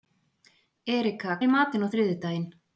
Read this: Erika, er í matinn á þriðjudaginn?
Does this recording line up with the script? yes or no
yes